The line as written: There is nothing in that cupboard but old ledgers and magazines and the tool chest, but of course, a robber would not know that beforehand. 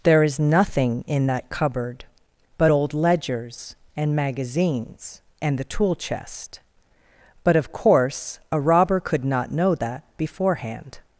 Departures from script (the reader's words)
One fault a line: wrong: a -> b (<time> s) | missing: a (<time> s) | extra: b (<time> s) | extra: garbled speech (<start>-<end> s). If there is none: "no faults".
wrong: would -> could (9.0 s)